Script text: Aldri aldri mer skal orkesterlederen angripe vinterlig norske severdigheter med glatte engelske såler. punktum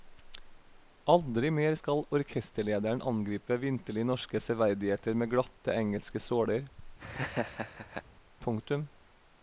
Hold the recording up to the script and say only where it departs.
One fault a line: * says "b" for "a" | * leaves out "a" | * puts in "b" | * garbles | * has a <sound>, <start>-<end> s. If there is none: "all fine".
* leaves out "aldri"
* has a laugh, 7.0-8.0 s